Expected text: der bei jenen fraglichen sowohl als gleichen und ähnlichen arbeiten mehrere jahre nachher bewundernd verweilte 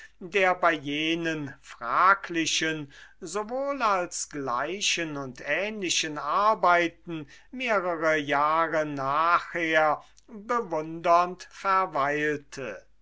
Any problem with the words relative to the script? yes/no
no